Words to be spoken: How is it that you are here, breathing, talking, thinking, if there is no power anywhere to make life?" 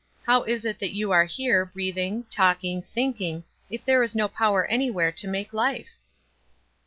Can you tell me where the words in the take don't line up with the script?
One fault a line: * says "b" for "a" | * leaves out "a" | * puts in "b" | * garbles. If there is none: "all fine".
all fine